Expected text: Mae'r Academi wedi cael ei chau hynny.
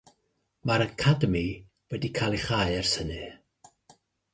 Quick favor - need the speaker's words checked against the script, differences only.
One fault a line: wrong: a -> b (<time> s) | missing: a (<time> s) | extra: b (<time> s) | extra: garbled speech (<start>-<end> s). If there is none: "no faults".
extra: ers (2.8 s)